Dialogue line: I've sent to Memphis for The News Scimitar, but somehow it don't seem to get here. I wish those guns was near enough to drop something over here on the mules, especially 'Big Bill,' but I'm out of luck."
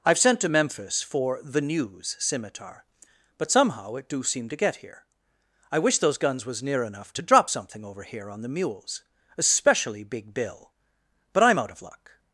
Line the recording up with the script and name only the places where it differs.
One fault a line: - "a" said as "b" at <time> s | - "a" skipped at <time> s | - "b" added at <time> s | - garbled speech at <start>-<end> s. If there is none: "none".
- "don't" said as "do" at 4.1 s